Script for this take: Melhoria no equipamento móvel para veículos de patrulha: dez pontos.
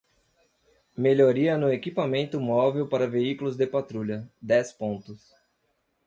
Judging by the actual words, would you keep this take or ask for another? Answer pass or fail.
pass